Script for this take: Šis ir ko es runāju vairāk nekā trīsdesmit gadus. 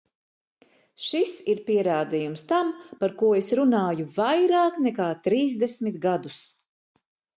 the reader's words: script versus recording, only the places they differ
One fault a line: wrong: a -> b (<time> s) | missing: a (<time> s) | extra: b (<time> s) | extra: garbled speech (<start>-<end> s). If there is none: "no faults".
extra: pierādījums tam par (1.7 s)